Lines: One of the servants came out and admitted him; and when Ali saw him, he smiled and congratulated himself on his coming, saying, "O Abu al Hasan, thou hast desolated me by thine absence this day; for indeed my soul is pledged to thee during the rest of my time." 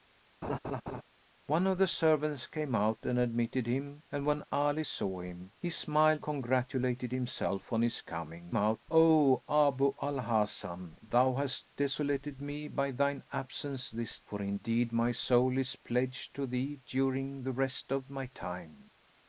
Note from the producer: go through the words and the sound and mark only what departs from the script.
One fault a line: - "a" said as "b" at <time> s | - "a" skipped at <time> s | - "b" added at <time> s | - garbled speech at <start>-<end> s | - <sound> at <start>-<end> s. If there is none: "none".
- laugh at 0.4-1.0 s
- "and" skipped at 6.2 s
- "saying" said as "out" at 8.5 s
- "day" skipped at 14.2 s